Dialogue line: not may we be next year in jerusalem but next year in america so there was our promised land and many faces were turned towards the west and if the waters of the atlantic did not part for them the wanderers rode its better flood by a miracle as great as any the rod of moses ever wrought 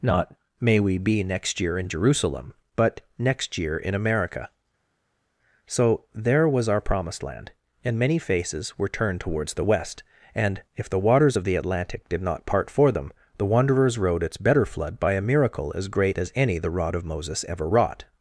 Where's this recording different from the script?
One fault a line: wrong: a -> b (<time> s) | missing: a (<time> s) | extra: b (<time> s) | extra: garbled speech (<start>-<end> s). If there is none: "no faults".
no faults